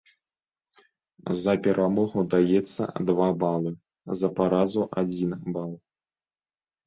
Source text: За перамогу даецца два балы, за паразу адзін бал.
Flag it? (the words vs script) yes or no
no